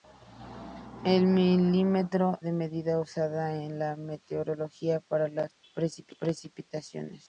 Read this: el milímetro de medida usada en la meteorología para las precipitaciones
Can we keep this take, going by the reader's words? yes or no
yes